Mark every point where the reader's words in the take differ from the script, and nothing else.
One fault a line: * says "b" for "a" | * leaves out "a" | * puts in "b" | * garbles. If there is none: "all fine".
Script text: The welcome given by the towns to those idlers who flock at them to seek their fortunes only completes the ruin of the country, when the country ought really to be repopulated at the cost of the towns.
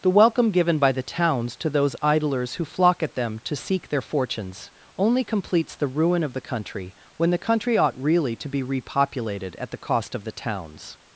all fine